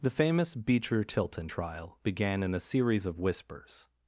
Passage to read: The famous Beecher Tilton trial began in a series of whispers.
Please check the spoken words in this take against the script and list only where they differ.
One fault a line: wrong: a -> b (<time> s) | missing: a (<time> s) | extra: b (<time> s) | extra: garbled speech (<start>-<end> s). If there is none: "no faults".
no faults